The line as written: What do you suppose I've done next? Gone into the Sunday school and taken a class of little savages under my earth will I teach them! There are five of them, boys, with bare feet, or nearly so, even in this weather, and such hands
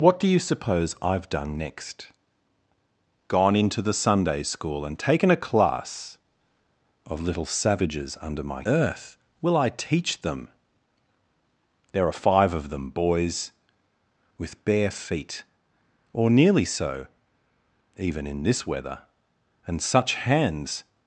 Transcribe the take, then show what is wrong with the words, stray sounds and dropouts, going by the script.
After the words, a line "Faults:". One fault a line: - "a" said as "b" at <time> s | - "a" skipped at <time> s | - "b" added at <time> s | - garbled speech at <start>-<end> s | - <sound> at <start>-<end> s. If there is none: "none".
What do you suppose I've done next? Gone into the Sunday school and taken a class of little savages under my earth will I teach them! There are five of them, boys, with bare feet, or nearly so, even in this weather, and such hands
Faults:
none